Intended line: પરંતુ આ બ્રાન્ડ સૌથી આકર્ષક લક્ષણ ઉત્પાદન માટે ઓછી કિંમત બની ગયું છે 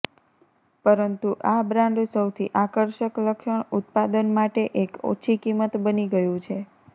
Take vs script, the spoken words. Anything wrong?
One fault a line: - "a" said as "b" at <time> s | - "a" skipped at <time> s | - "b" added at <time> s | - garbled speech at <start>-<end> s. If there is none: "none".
- "એક" added at 4.8 s